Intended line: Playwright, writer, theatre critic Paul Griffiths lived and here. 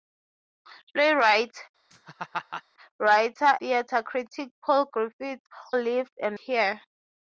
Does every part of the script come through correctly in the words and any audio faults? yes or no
no